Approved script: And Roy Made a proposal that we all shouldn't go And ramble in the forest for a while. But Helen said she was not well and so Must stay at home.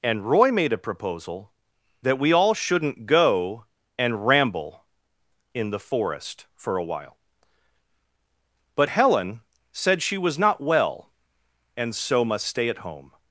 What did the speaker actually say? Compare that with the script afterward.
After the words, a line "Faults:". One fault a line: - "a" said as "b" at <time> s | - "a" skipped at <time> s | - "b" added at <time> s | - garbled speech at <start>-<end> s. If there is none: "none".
And Roy Made a proposal that we all shouldn't go And ramble in the forest for a while. But Helen said she was not well and so Must stay at home.
Faults:
none